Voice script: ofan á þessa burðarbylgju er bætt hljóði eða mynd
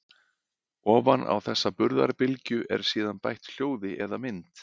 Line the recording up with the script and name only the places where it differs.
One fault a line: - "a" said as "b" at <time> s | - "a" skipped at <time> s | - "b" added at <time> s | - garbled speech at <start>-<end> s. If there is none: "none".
- "síðan" added at 2.9 s